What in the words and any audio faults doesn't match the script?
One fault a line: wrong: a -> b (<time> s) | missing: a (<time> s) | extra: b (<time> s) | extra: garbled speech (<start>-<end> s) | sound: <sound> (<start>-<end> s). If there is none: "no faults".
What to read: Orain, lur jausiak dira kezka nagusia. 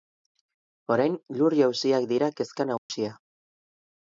sound: dropout (2.8-2.9 s)